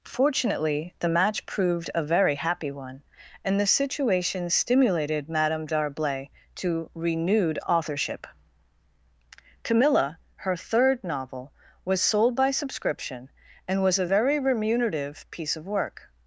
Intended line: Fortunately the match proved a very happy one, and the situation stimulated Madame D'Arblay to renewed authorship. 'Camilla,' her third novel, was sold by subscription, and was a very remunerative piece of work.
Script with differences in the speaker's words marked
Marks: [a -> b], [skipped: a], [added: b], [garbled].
Fortunately the match proved a very happy one, and the situation stimulated Madame D'Arblay to renewed authorship. 'Camilla,' her third novel, was sold by subscription, and was a very remunerative piece of work.